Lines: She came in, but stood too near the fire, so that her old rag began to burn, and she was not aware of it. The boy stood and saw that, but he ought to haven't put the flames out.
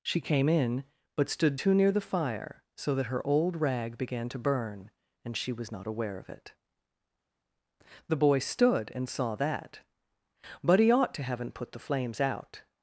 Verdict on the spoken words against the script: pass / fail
pass